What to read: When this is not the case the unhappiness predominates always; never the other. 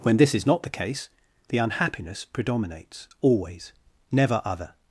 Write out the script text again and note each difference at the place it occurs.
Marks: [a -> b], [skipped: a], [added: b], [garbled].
When this is not the case the unhappiness predominates always; never [skipped: the] other.